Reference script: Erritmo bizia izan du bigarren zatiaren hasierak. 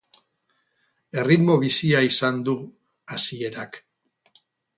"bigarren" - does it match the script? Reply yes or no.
no